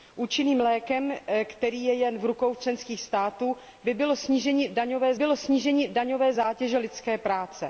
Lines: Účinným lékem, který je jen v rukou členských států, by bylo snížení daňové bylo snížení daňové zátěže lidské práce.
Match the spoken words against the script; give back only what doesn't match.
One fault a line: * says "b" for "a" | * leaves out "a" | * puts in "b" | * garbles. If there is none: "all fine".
all fine